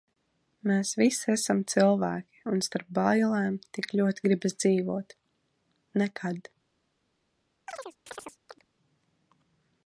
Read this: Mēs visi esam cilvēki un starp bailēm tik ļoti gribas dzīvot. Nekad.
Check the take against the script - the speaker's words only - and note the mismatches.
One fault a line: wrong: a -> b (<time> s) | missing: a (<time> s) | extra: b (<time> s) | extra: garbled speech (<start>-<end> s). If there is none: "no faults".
no faults